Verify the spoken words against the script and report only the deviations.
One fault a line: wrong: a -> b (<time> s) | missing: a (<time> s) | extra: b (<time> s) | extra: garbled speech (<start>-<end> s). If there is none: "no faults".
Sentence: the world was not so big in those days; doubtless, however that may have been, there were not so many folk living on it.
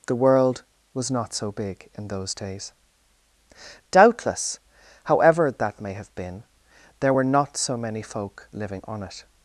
no faults